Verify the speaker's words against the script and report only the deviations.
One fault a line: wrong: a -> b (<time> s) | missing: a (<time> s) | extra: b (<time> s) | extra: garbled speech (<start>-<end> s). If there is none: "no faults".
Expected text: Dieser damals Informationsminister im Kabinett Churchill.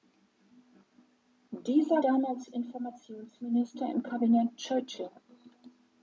no faults